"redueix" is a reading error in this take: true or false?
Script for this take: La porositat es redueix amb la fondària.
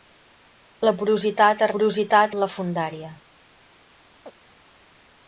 true